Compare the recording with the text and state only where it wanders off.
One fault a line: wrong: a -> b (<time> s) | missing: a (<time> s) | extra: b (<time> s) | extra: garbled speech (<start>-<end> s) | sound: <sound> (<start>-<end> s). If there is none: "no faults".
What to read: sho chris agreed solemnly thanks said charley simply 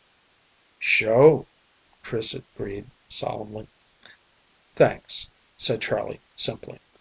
no faults